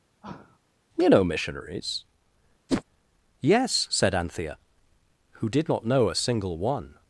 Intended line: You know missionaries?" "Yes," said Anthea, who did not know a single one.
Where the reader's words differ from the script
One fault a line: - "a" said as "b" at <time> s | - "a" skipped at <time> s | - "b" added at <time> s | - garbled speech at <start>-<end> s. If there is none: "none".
none